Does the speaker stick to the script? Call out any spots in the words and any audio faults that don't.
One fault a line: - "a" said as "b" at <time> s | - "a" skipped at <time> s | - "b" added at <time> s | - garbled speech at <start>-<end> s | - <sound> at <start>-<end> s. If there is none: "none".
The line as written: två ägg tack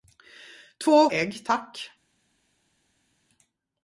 none